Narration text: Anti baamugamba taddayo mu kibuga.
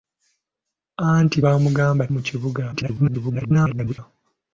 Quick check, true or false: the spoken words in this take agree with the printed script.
false